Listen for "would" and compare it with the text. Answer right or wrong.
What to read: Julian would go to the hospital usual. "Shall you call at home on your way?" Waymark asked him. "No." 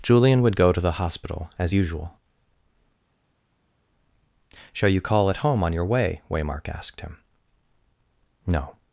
right